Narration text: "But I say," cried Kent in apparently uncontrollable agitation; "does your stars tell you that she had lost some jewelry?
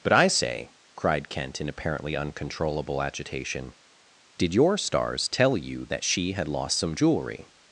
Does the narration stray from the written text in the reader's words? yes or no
yes